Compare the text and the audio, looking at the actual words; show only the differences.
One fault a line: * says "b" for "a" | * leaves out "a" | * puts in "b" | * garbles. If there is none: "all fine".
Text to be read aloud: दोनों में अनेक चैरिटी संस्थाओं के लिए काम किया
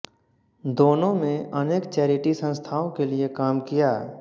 all fine